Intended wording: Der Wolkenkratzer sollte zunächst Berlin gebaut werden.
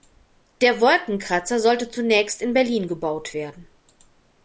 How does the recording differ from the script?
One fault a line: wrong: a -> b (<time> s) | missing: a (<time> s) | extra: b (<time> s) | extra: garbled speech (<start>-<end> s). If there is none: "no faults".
extra: in (2.4 s)